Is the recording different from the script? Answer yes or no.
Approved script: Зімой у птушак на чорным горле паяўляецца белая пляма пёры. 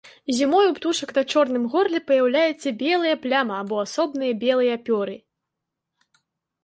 yes